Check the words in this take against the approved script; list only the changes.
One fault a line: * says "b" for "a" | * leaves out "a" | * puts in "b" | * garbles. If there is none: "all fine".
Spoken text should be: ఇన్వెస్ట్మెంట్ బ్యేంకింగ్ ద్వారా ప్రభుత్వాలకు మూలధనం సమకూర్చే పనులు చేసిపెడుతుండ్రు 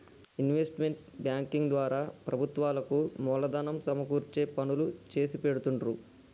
all fine